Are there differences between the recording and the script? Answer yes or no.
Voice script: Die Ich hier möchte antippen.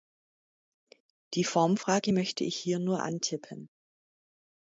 yes